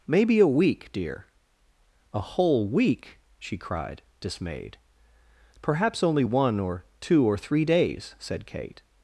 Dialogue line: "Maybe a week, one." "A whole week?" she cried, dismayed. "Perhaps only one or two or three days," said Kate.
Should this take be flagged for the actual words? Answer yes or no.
yes